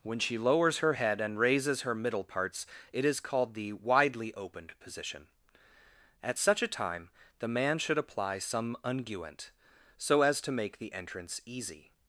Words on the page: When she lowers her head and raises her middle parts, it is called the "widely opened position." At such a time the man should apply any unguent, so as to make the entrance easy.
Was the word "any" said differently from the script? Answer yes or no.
yes